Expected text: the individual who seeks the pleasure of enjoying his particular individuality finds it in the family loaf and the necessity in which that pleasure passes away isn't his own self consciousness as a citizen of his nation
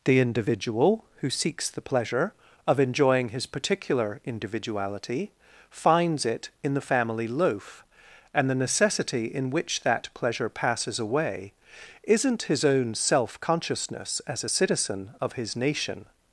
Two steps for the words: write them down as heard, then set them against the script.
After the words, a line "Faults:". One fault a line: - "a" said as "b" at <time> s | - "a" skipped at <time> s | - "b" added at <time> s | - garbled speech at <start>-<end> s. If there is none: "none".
the individual who seeks the pleasure of enjoying his particular individuality finds it in the family loaf and the necessity in which that pleasure passes away isn't his own self consciousness as a citizen of his nation
Faults:
none